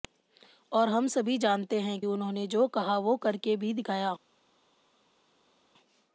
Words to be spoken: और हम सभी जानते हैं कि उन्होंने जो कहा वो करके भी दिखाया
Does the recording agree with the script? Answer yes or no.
no